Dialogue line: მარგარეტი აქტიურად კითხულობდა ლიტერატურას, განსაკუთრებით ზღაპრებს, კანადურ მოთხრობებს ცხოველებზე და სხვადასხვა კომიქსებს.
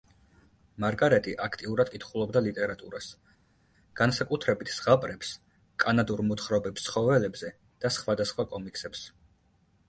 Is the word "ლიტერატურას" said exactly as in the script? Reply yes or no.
yes